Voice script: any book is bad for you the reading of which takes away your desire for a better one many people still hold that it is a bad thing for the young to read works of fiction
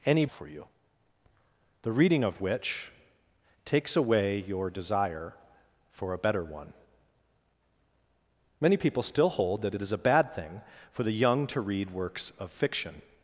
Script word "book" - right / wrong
wrong